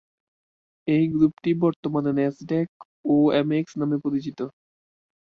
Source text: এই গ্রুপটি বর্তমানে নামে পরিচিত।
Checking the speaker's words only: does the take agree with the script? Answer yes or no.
no